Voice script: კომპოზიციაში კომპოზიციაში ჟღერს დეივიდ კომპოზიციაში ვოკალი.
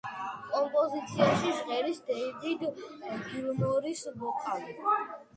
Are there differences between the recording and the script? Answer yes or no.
yes